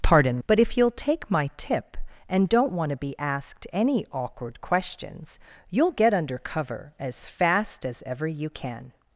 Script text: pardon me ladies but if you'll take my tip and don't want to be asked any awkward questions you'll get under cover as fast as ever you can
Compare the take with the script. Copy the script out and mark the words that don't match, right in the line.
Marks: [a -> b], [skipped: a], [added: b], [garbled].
pardon [skipped: me ladies] but if you'll take my tip and don't want to be asked any awkward questions you'll get under cover as fast as ever you can